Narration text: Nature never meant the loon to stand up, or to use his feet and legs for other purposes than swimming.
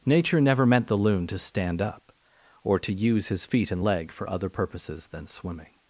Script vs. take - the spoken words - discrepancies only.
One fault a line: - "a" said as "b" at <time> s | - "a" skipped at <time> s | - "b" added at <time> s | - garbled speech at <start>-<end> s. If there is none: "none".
- "legs" said as "leg" at 3.8 s